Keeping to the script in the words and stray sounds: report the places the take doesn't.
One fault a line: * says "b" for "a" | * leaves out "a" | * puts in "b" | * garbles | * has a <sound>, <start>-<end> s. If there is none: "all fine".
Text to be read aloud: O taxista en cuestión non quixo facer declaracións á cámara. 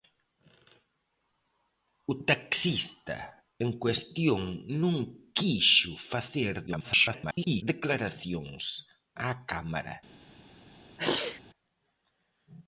* garbles
* has a sneeze, 11.0-11.4 s